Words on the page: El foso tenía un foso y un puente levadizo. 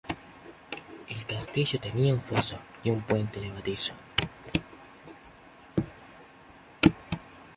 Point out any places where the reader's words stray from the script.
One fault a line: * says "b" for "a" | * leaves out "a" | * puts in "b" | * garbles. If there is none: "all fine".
* says "castillo" for "foso"